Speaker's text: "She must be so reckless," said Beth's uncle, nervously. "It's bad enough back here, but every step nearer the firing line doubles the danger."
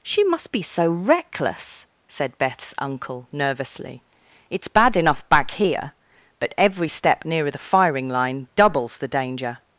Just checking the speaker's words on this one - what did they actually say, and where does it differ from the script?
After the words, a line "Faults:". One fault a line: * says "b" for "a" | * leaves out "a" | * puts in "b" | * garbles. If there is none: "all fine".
"She must be so reckless," said Beth's uncle, nervously. "It's bad enough back here, but every step nearer the firing line doubles the danger."
Faults:
all fine